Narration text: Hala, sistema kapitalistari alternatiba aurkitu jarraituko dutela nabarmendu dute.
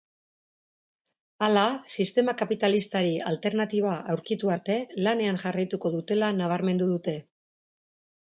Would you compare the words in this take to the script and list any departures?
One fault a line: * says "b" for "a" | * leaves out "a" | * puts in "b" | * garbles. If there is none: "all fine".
* puts in "arte lanean"